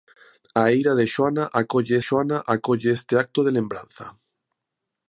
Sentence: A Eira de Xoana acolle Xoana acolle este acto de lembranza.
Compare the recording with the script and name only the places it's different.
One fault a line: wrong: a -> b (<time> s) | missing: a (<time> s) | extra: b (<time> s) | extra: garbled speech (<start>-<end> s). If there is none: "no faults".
no faults